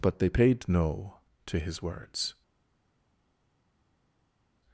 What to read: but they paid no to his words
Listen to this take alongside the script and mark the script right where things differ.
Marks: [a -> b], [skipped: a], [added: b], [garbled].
but they paid no to his words